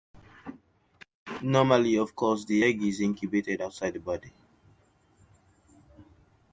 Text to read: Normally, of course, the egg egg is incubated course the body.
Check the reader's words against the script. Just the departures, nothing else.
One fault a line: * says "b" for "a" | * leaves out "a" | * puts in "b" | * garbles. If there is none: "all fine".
* leaves out "egg"
* says "outside" for "course"